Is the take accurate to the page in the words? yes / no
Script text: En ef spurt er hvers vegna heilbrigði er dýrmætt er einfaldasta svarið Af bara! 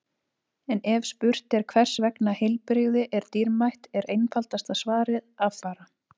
yes